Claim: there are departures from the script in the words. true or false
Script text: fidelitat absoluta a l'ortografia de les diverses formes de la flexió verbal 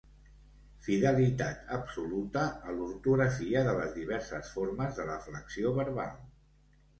false